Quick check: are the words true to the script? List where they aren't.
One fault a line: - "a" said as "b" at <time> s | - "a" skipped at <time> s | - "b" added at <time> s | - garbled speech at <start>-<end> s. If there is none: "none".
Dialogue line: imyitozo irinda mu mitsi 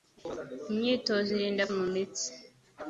none